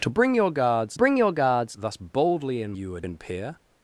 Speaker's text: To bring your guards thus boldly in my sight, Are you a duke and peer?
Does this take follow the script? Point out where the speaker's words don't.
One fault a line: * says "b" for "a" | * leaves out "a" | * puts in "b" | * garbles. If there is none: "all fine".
* puts in "bring your guards"
* leaves out "my sight Are"
* leaves out "duke"